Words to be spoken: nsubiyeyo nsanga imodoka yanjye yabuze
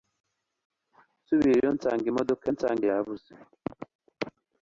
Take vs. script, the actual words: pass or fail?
fail